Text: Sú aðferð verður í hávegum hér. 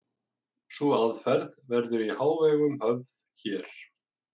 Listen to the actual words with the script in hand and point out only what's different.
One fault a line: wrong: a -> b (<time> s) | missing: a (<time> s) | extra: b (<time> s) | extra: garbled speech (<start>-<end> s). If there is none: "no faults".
extra: höfð (2.9 s)